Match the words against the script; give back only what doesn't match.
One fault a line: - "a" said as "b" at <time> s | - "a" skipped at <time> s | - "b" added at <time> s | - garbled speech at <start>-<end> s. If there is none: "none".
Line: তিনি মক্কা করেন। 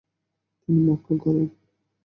none